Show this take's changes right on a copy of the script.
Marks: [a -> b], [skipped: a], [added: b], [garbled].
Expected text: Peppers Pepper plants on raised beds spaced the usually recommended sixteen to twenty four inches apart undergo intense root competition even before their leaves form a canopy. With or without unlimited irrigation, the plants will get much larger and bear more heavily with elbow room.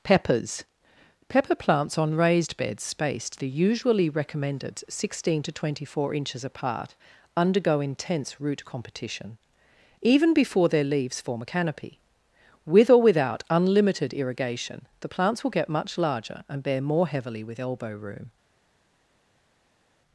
Peppers Pepper plants on raised beds spaced the usually recommended sixteen to twenty four inches apart undergo intense root competition even before their leaves form a canopy. With or without unlimited irrigation, the plants will get much larger and bear more heavily with elbow room.